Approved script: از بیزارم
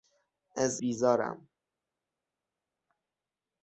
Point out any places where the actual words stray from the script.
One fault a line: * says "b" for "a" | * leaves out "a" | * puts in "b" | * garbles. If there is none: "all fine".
all fine